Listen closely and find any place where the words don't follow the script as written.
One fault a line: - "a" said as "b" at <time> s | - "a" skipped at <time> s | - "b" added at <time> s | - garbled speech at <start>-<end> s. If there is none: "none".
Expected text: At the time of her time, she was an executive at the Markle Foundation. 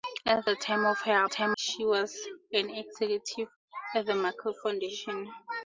none